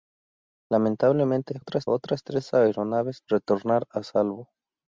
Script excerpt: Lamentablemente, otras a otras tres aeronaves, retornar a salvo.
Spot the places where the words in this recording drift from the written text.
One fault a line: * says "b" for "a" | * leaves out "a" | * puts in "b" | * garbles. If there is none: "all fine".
all fine